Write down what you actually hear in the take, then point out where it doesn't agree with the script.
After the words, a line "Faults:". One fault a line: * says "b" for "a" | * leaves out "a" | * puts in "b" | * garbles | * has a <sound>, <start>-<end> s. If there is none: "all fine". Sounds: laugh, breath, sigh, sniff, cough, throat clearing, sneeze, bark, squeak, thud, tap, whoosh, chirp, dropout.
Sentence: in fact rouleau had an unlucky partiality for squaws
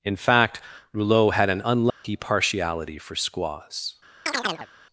in fact rouleau had an unlucky partiality for squaws
Faults:
* has a dropout, 1.9-2.0 s
* has a chirp, 4.3-4.7 s